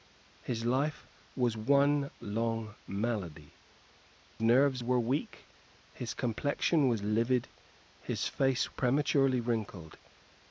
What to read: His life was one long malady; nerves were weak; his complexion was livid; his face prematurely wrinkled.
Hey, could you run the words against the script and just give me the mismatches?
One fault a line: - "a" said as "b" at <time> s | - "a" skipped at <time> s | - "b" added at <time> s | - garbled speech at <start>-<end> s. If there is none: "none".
none